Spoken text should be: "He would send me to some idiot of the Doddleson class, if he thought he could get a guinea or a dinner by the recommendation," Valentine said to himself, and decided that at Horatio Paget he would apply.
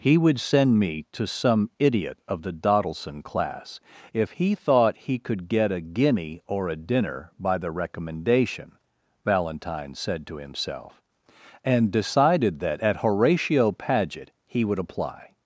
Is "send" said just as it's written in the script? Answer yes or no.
yes